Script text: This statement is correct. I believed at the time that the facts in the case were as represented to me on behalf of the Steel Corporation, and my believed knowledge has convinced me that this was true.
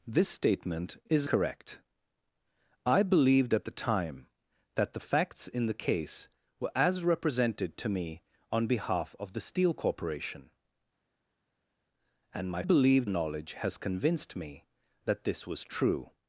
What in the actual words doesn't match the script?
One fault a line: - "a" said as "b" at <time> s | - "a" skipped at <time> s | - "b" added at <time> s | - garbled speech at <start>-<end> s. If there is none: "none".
none